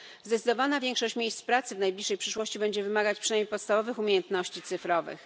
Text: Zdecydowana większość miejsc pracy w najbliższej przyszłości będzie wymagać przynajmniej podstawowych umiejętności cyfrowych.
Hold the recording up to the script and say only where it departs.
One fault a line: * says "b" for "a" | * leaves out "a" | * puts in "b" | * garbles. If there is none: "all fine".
all fine